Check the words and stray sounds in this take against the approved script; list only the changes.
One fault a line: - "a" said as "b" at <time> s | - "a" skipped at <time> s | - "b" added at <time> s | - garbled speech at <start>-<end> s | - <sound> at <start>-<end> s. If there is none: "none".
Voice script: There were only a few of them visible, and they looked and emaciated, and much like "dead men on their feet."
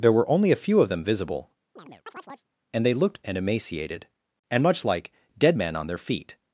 - chirp at 1.8-2.5 s